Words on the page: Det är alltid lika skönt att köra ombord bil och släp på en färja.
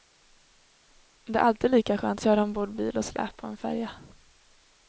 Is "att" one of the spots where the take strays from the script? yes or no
yes